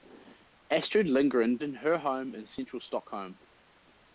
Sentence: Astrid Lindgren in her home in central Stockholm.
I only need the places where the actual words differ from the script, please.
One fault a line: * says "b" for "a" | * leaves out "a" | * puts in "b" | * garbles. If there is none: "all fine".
all fine